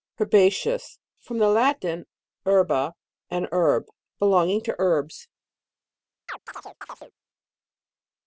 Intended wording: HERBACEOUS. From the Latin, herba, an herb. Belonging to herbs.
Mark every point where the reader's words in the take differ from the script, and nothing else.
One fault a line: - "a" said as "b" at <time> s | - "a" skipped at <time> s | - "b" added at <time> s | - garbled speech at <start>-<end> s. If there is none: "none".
none